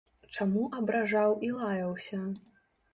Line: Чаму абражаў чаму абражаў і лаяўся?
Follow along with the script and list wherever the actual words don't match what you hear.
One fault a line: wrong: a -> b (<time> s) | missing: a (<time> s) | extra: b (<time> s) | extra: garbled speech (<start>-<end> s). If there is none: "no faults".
missing: чаму абражаў (1.4 s)